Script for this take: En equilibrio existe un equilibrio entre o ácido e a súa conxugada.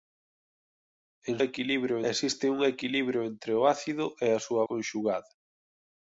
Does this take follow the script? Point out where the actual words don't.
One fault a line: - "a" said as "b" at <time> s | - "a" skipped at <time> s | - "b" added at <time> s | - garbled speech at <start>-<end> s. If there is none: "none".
none